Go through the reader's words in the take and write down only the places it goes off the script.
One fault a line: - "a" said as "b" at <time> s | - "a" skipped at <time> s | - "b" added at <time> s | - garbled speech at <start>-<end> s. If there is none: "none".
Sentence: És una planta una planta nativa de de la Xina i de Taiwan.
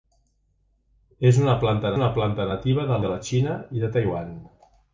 none